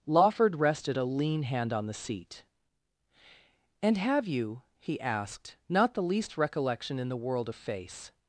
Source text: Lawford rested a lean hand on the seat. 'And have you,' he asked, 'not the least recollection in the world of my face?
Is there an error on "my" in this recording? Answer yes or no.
yes